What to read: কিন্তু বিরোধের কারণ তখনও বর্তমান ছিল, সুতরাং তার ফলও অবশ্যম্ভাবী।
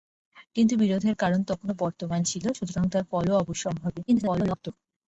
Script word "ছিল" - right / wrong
right